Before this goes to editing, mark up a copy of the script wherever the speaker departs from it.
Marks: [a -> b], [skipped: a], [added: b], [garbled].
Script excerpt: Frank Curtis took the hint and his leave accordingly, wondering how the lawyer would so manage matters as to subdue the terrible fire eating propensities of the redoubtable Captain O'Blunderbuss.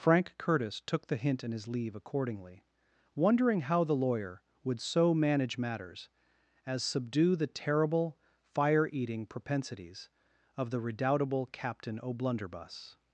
Frank Curtis took the hint [and -> in] his leave accordingly, wondering how the lawyer would so manage matters as [skipped: to] subdue the terrible fire eating propensities of the redoubtable Captain O'Blunderbuss.